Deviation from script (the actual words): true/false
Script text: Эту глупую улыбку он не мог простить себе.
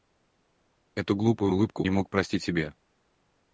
true